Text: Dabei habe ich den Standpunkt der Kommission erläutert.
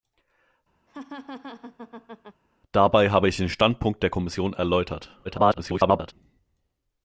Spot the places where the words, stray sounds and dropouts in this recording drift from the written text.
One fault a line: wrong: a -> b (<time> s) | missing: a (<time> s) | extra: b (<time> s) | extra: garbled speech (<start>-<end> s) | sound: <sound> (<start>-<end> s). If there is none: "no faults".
sound: laugh (0.9-2.4 s)
extra: garbled speech (5.2-6.1 s)